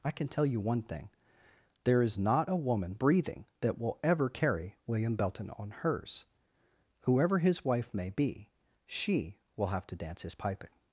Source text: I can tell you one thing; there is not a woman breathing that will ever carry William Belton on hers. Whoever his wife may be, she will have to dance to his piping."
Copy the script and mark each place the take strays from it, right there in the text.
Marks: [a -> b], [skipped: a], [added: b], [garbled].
I can tell you one thing; there is not a woman breathing that will ever carry William Belton on hers. Whoever his wife may be, she will have to dance [skipped: to] his piping."